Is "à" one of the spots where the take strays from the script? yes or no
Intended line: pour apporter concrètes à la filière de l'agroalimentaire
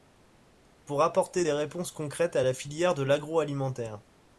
no